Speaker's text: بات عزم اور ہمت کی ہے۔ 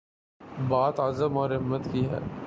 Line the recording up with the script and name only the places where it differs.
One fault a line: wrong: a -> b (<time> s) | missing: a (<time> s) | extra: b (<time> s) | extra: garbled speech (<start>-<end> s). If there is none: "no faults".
no faults